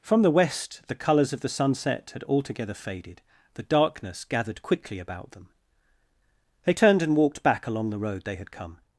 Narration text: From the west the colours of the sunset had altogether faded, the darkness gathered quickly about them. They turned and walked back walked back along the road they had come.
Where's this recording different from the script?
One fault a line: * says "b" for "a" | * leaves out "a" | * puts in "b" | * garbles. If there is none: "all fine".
* leaves out "walked back"